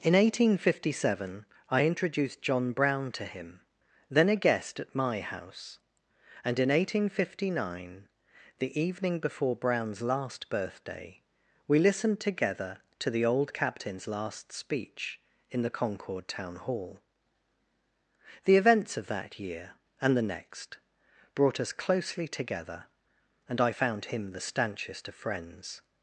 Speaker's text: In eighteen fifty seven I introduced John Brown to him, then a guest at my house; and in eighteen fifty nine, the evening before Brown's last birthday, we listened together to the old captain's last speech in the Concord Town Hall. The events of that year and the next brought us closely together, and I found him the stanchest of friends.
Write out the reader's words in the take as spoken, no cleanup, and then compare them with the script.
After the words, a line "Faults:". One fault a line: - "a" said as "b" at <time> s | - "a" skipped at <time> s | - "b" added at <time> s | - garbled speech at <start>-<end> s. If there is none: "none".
In eighteen fifty seven I introduced John Brown to him, then a guest at my house; and in eighteen fifty nine, the evening before Brown's last birthday, we listened together to the old captain's last speech in the Concord Town Hall. The events of that year and the next brought us closely together, and I found him the stanchest of friends.
Faults:
none